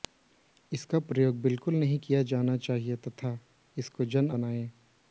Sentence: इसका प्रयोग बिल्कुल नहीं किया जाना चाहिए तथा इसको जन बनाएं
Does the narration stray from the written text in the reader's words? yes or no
no